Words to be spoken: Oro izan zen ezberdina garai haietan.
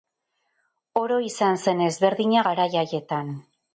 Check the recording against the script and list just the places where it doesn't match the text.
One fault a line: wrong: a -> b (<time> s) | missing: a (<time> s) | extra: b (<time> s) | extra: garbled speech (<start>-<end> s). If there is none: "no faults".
no faults